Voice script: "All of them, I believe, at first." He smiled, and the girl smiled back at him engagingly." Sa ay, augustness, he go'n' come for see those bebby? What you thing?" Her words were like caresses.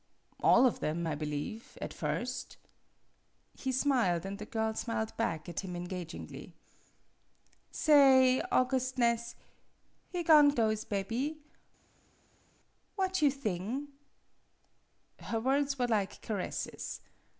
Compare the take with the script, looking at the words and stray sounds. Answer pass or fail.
fail